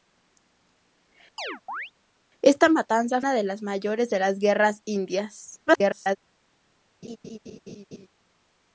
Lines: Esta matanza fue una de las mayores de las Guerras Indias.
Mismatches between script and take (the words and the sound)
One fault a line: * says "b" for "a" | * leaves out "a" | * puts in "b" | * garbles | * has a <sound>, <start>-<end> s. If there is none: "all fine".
* has a chirp, 1.4-1.9 s
* leaves out "fue"
* garbles
* has a laugh, 7.0-8.1 s